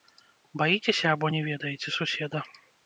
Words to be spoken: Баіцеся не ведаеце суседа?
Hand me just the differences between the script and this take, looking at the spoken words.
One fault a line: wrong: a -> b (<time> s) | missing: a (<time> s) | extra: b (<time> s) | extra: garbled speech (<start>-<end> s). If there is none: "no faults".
extra: або (1.1 s)